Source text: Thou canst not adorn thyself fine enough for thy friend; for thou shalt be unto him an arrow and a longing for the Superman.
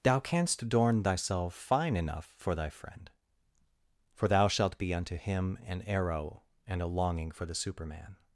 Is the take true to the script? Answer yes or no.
no